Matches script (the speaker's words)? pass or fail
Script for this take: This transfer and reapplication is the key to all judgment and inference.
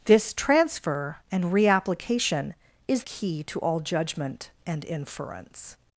fail